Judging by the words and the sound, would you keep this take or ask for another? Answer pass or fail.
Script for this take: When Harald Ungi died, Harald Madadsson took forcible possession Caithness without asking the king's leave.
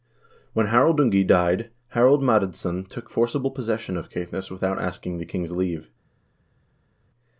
fail